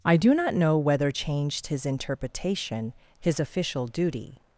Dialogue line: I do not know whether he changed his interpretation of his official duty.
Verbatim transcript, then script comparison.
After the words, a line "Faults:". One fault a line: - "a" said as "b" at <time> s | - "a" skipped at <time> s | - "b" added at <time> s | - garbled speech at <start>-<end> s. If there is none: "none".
I do not know whether changed his interpretation his official duty.
Faults:
- "he" skipped at 1.1 s
- "of" skipped at 2.9 s